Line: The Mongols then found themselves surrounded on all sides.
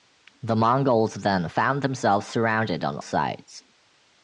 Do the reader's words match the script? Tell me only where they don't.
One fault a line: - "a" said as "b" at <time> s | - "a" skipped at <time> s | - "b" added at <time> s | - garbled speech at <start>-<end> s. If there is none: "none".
- "all" skipped at 3.0 s